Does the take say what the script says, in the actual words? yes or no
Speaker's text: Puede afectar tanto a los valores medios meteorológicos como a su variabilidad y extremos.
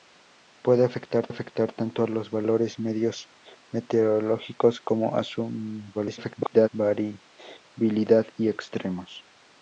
no